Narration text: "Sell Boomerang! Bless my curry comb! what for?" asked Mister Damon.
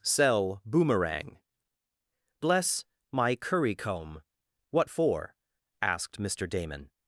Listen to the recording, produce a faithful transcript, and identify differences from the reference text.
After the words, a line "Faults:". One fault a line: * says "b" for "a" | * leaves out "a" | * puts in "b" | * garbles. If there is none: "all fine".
"Sell Boomerang! Bless my curry comb! what for?" asked Mister Damon.
Faults:
all fine